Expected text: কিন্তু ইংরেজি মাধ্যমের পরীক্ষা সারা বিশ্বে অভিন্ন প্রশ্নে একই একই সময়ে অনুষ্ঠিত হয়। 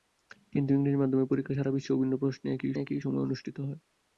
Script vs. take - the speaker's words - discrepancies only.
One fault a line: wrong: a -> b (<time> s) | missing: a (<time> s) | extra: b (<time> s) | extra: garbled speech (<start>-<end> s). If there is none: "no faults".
no faults